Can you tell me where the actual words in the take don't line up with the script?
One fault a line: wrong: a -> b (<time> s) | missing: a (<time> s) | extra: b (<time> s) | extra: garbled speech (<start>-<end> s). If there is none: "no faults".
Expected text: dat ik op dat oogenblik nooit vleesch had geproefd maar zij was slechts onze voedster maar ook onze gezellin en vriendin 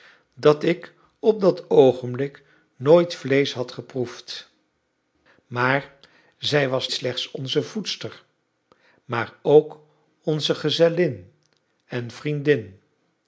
no faults